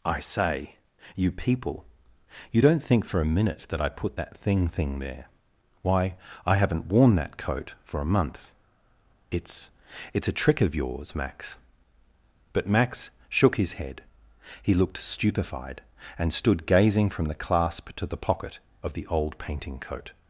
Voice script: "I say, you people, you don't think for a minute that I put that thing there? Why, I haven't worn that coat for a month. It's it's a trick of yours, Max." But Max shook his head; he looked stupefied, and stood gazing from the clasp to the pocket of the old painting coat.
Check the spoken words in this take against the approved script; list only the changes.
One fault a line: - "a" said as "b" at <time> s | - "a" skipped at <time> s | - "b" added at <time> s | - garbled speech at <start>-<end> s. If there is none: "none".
- "thing" added at 4.7 s